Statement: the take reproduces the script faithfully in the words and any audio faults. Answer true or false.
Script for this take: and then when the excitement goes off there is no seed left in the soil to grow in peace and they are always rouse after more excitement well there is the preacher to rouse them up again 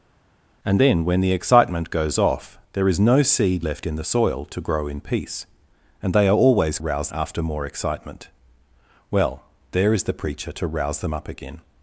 true